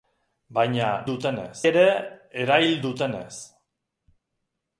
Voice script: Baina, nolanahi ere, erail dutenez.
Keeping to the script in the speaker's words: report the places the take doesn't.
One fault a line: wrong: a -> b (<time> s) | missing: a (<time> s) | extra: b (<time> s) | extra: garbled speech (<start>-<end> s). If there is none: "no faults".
wrong: nolanahi -> dutenez (1.1 s)